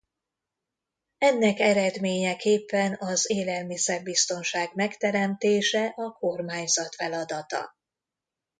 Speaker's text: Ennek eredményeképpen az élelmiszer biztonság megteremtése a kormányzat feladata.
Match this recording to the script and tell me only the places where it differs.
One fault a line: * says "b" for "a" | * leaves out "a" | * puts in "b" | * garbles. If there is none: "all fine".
all fine